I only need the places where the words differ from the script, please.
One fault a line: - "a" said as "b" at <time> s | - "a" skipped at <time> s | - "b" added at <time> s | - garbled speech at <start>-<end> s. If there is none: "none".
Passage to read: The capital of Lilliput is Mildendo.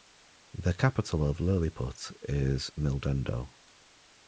none